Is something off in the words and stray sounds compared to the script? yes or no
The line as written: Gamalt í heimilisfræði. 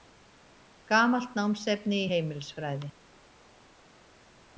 yes